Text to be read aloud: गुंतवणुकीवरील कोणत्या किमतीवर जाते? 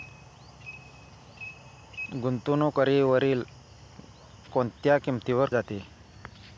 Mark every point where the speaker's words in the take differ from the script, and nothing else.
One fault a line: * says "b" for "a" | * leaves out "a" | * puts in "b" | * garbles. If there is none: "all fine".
all fine